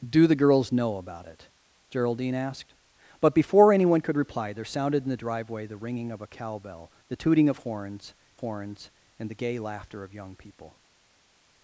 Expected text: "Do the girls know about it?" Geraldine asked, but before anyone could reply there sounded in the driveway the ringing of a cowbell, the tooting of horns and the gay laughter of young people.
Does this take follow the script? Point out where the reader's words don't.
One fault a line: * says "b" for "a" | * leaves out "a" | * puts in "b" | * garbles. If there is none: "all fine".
* puts in "horns"